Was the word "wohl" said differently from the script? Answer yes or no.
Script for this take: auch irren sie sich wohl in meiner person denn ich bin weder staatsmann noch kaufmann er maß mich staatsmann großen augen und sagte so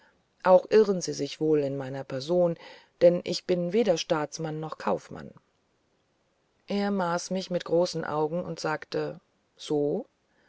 no